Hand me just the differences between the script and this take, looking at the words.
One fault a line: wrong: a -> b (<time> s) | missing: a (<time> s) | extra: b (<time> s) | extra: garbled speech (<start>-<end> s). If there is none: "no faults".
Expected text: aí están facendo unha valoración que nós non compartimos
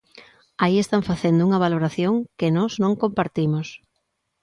no faults